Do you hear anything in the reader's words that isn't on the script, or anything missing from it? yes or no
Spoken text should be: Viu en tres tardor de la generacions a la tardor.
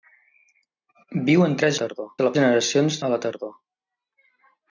no